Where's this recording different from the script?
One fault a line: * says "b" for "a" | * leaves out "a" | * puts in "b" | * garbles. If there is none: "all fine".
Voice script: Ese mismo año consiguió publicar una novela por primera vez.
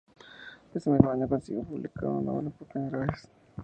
all fine